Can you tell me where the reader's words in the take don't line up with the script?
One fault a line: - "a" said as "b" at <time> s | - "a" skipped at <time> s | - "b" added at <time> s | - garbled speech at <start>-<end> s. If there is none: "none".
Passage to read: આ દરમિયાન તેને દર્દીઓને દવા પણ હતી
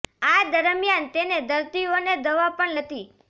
none